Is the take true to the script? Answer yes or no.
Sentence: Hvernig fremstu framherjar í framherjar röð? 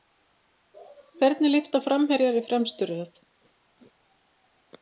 no